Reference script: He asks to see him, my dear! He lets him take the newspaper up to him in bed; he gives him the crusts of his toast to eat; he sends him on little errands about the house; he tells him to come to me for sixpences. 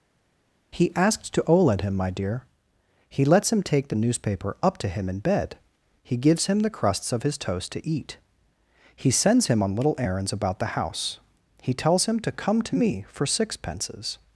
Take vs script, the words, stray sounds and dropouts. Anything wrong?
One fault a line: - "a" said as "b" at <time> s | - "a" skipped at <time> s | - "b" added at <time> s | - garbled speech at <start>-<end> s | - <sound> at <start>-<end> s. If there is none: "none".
- "see" said as "oled" at 1.4 s